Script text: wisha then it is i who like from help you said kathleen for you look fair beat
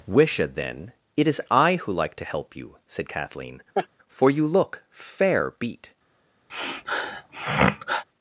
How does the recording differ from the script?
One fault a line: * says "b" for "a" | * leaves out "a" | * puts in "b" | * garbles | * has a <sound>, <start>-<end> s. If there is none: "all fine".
* says "to" for "from"
* has a laugh, 3.7-3.9 s
* has a sniff, 6.5-8.0 s